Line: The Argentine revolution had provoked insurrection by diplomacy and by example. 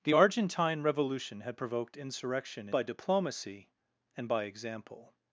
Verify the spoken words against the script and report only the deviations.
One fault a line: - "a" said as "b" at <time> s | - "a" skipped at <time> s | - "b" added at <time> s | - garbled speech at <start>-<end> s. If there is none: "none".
none